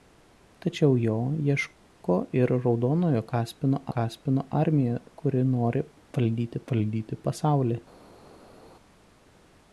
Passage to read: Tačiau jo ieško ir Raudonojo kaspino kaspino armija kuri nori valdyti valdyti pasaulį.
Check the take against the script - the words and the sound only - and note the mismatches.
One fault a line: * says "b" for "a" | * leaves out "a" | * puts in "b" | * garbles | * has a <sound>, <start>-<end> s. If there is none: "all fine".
all fine